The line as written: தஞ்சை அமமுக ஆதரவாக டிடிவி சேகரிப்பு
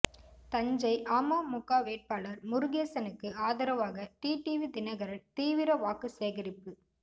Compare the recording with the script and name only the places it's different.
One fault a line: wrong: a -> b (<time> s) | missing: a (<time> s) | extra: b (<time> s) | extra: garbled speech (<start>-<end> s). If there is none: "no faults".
extra: வேட்பாளர் முருகேசனுக்கு (1.8 s)
extra: தினகரன் தீவிர வாக்கு (4.7 s)